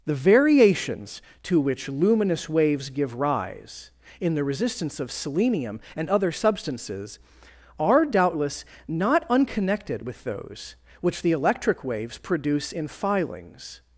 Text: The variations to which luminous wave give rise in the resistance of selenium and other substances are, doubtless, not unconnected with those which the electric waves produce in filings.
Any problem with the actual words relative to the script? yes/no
yes